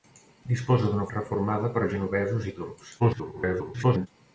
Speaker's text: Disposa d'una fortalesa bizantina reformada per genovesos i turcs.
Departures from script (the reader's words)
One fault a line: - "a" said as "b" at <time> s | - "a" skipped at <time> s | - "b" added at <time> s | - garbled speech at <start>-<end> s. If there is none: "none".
- "fortalesa bizantina" skipped at 1.0 s
- garbled speech at 3.0-4.1 s